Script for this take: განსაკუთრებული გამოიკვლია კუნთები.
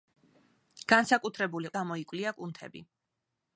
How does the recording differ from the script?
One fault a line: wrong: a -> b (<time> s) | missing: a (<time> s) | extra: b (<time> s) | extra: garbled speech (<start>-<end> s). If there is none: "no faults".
no faults